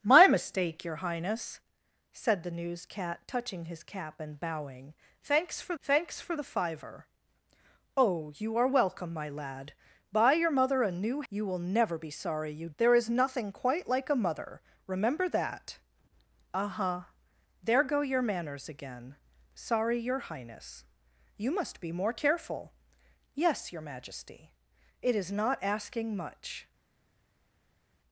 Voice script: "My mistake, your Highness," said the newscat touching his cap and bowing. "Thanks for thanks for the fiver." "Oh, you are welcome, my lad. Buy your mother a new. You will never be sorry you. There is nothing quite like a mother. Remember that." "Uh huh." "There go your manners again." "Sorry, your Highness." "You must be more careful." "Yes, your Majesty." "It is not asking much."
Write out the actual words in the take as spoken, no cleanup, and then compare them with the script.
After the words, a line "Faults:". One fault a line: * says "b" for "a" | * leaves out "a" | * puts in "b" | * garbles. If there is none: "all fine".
"My mistake, your Highness," said the newscat touching his cap and bowing. "Thanks for thanks for the fiver." "Oh, you are welcome, my lad. Buy your mother a new. You will never be sorry you. There is nothing quite like a mother. Remember that." "Uh huh." "There go your manners again." "Sorry, your Highness." "You must be more careful." "Yes, your Majesty." "It is not asking much."
Faults:
all fine